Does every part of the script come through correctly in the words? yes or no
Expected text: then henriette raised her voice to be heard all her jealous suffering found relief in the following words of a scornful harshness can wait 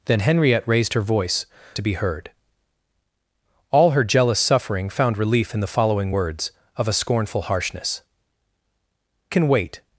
yes